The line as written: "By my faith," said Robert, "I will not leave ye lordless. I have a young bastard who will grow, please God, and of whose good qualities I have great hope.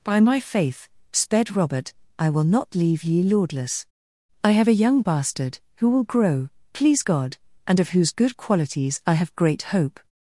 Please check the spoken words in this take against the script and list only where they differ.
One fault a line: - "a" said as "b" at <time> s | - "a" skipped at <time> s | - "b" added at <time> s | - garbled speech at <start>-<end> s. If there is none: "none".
- "said" said as "sped" at 1.1 s